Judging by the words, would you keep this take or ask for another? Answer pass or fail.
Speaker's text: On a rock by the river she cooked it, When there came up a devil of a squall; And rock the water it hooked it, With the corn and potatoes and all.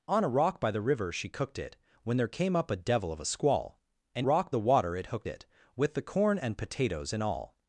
pass